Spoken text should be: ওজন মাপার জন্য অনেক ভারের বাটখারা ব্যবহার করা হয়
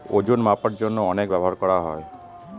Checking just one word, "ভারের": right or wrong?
wrong